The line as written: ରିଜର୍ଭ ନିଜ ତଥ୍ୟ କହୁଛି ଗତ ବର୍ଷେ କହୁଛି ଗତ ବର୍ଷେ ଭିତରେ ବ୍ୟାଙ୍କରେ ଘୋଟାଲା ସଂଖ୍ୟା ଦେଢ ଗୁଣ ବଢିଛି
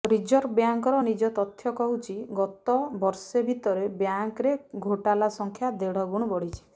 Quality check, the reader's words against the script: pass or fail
fail